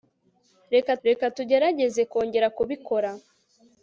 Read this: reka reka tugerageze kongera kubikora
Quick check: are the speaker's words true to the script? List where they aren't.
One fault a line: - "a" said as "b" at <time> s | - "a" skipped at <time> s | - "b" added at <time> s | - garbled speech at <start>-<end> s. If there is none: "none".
none